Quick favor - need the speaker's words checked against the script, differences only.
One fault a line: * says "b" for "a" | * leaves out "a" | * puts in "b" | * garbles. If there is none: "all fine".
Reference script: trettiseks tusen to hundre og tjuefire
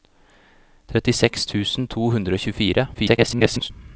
* garbles